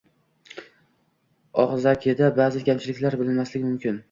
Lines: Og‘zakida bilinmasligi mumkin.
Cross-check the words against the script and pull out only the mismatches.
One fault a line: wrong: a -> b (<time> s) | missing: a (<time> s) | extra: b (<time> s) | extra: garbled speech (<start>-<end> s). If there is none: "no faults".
extra: ba'zi kamchiliklar (2.4 s)